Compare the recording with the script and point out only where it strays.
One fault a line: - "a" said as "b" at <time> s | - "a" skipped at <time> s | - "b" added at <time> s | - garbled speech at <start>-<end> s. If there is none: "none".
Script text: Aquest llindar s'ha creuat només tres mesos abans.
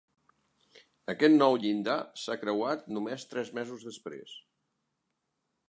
- "nou" added at 1.4 s
- "abans" said as "després" at 3.9 s